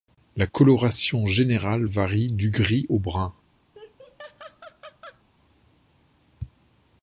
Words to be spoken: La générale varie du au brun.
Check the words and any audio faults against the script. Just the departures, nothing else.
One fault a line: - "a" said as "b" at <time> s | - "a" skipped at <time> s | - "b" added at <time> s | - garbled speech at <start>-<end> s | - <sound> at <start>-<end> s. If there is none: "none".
- "coloration" added at 0.4 s
- "gris" added at 2.5 s
- laugh at 3.7-5.2 s